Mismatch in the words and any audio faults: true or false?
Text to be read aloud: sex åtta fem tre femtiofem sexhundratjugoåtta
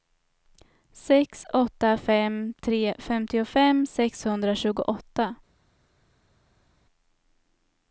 false